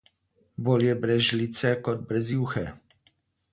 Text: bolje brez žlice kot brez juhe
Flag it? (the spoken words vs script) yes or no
no